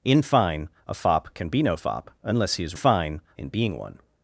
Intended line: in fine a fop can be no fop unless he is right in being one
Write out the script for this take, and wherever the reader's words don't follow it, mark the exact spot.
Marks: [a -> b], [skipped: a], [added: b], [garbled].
in fine a fop can be no fop unless he is [right -> fine] in being one